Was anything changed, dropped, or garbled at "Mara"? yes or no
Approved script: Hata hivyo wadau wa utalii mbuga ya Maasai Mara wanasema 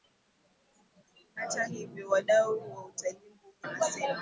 yes